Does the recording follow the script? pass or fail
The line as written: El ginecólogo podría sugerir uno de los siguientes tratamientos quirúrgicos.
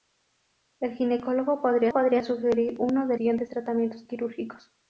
fail